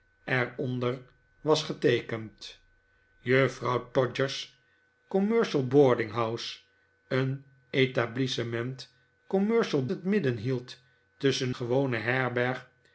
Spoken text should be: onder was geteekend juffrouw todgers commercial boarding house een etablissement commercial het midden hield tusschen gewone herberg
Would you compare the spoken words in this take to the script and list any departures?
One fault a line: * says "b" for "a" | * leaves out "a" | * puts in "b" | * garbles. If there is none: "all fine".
all fine